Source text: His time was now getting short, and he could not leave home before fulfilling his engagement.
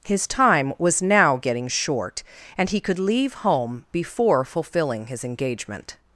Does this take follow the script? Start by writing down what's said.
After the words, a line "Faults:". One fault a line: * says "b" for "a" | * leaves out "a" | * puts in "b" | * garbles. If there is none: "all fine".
His time was now getting short, and he could leave home before fulfilling his engagement.
Faults:
* leaves out "not"